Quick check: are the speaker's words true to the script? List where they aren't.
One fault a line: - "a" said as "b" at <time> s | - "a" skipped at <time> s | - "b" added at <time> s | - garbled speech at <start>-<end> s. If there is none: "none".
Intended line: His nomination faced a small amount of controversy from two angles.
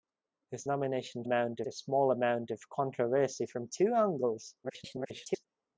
- "faced" said as "amount" at 1.2 s
- garbled speech at 4.6-5.5 s